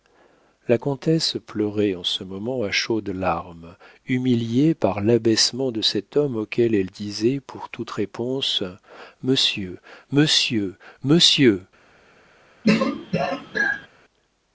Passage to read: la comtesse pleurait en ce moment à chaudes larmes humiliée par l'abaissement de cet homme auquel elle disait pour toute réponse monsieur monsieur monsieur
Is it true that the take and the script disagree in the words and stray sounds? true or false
true